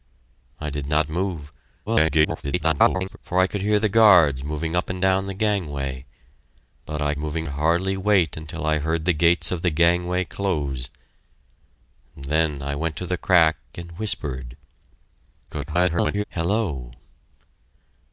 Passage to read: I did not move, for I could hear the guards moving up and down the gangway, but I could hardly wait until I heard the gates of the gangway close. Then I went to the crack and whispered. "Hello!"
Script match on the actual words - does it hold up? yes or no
no